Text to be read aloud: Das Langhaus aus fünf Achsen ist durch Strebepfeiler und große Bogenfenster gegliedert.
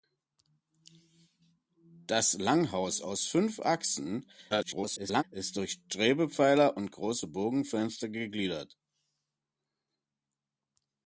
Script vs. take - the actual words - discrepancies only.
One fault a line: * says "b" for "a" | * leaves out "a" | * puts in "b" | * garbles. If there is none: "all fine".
* garbles